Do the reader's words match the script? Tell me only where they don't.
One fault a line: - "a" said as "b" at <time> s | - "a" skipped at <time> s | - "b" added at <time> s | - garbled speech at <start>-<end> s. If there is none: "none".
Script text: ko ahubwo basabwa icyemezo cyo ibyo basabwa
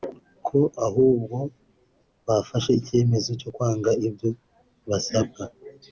- "basabwa" said as "bafashe" at 2.3 s
- "kwanga" added at 3.5 s